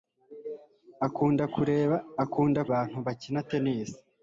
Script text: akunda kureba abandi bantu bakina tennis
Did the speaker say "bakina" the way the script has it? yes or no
yes